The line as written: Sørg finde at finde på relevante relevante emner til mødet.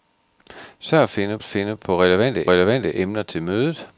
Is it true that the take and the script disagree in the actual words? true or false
false